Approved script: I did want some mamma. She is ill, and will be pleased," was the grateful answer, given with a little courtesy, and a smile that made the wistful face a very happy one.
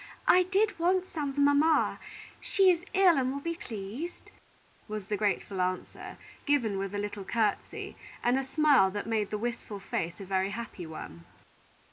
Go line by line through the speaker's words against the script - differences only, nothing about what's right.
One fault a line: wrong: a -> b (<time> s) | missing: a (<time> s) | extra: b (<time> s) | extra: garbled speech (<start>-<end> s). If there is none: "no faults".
no faults